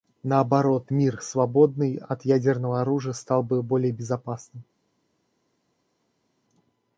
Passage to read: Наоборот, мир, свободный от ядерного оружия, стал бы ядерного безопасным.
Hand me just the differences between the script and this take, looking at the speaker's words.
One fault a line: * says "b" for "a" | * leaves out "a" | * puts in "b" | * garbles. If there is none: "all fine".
* says "более" for "ядерного"